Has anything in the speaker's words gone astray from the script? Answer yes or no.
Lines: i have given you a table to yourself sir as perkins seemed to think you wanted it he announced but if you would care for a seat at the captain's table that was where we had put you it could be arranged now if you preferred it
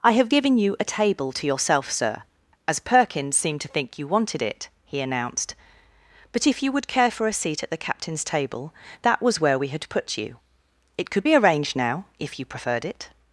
no